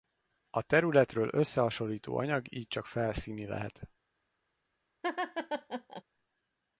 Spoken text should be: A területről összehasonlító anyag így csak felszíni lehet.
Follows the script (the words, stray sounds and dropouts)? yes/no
no